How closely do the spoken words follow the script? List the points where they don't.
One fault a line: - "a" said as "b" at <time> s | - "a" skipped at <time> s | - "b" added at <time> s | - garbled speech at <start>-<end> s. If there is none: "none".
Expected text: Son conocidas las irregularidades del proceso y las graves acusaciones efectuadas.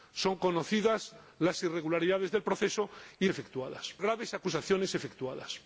- "las" said as "efectuadas" at 3.3 s